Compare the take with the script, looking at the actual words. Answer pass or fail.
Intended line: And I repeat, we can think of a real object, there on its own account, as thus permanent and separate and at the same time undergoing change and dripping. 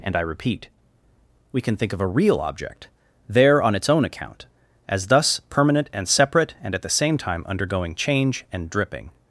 pass